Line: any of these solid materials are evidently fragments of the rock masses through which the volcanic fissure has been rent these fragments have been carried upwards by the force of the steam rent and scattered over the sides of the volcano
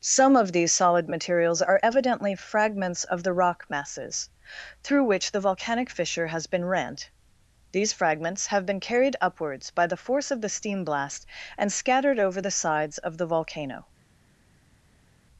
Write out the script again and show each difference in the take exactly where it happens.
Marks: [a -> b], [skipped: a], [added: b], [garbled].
[any -> some] of these solid materials are evidently fragments of the rock masses through which the volcanic fissure has been rent these fragments have been carried upwards by the force of the steam [rent -> blast] and scattered over the sides of the volcano